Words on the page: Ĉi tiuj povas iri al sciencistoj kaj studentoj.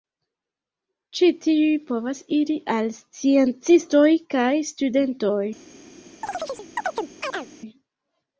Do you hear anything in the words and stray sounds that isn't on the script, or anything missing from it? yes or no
yes